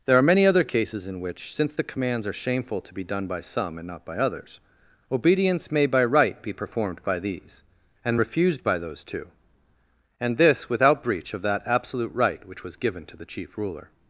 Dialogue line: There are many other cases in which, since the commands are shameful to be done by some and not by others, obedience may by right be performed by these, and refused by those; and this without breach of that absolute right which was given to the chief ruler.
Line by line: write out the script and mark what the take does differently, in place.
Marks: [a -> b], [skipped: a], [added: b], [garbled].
There are many other cases in which, since the commands are shameful to be done by some and not by others, obedience may by right be performed by these, and refused by those; [added: two] and this without breach of that absolute right which was given to the chief ruler.